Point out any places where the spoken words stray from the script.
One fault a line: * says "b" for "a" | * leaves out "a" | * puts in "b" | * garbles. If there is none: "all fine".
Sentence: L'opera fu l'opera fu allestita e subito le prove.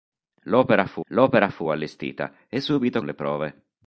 all fine